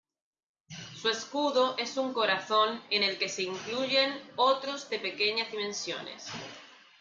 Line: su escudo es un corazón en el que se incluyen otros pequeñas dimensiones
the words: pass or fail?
fail